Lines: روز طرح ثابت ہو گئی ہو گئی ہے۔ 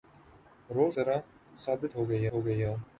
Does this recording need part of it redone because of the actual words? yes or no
no